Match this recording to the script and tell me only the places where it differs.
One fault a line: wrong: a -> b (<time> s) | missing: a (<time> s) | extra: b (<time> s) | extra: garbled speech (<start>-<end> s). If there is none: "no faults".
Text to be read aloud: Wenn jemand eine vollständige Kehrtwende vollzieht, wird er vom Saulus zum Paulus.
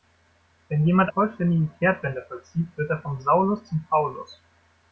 missing: eine (1.1 s)